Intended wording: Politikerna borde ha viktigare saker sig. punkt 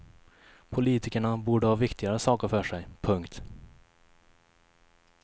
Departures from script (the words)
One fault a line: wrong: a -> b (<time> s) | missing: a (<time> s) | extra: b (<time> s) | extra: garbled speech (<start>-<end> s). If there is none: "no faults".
extra: för (2.5 s)